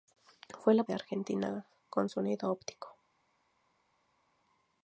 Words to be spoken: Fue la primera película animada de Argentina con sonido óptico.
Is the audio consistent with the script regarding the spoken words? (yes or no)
no